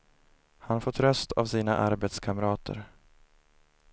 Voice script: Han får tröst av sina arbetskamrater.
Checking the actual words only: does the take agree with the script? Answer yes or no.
yes